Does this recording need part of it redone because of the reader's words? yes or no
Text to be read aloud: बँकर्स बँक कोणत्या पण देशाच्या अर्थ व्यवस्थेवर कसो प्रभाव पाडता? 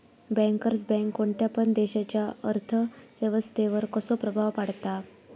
no